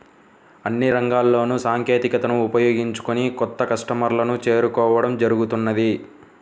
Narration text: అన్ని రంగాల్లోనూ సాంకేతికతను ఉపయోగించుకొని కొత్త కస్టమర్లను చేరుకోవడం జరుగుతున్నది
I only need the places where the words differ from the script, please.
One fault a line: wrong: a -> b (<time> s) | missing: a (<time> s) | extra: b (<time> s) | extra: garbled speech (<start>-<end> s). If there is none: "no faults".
no faults